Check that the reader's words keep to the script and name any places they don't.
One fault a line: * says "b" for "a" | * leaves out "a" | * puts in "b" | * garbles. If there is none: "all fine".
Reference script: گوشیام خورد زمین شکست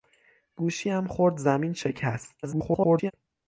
* garbles